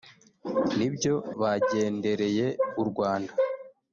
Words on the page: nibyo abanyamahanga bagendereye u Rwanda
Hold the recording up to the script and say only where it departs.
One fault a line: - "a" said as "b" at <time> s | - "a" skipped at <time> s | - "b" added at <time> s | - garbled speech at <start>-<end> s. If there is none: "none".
- "abanyamahanga" skipped at 1.1 s